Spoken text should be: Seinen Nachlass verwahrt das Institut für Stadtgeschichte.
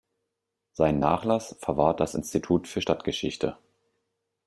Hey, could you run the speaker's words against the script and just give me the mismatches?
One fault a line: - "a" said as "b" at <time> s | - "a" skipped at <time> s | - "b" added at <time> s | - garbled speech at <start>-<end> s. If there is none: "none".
none